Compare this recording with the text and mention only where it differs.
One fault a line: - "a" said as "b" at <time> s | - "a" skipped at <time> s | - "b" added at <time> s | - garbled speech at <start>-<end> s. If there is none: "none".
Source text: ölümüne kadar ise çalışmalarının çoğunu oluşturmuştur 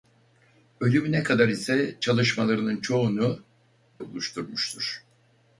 none